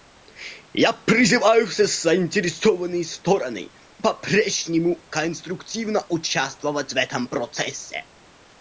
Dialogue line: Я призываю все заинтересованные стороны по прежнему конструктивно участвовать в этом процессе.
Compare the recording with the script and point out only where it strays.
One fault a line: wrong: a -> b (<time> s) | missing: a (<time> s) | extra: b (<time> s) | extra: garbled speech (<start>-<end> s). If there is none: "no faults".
no faults